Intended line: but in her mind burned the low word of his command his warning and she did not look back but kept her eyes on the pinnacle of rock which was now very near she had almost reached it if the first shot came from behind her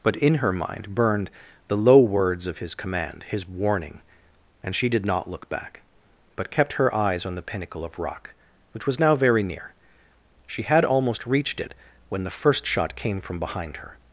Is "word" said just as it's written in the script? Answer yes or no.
no